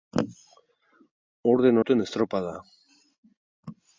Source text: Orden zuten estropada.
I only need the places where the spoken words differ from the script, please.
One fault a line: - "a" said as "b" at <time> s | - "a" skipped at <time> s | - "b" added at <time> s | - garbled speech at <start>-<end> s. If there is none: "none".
none